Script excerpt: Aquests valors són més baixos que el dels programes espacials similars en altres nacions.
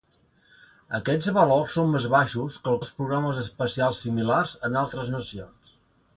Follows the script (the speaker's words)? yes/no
yes